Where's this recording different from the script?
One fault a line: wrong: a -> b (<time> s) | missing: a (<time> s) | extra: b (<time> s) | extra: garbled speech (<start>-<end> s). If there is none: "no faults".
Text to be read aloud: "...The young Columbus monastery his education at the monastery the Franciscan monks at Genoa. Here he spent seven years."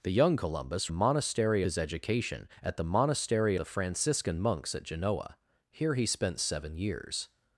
no faults